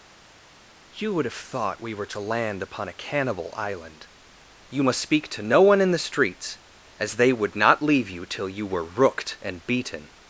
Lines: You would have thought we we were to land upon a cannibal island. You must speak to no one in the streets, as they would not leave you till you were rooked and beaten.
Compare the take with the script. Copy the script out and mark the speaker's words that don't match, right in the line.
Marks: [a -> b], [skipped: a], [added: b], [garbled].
You would have thought we [skipped: we] were to land upon a cannibal island. You must speak to no one in the streets, as they would not leave you till you were rooked and beaten.